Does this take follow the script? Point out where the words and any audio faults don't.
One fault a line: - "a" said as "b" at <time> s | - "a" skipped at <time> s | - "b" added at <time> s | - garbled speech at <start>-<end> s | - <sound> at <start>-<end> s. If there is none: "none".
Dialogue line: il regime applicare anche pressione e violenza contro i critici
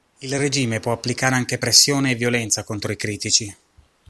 - "può" added at 0.8 s